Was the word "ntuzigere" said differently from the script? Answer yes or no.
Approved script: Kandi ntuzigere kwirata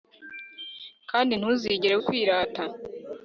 no